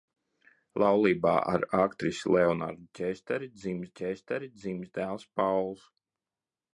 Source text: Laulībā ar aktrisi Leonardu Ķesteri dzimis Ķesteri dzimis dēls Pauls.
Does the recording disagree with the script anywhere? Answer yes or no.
no